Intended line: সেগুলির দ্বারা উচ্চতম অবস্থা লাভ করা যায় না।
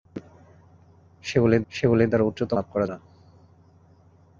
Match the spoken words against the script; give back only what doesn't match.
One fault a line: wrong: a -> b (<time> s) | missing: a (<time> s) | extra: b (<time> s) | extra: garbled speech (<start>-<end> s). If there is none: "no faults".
extra: সেগুলির (1.7 s)
missing: অবস্থা (2.6 s)
missing: যায় (2.9 s)